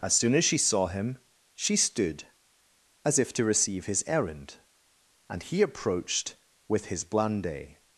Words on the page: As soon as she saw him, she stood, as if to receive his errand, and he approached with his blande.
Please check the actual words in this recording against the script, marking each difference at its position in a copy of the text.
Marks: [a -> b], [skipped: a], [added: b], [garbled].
As soon as she saw him, she stood, as if to receive his errand, and he approached with his blande.